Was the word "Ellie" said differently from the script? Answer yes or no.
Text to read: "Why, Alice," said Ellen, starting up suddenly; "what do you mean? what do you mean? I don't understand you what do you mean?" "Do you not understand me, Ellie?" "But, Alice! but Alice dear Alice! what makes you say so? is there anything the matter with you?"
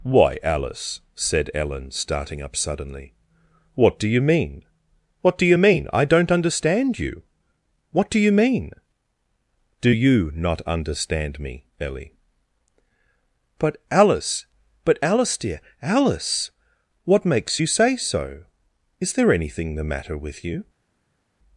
no